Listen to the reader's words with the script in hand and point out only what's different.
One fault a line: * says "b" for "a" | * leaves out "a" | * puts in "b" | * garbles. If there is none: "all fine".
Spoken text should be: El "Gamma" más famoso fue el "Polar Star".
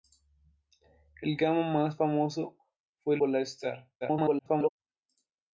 * leaves out "el"
* garbles